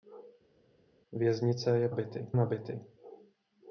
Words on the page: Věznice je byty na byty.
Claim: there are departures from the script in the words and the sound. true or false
false